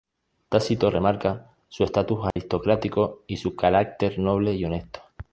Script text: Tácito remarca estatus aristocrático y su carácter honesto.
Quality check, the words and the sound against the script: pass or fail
fail